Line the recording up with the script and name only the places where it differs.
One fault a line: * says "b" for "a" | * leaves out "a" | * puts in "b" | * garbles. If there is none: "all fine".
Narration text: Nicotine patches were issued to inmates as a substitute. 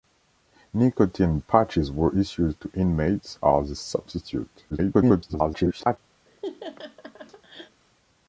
* garbles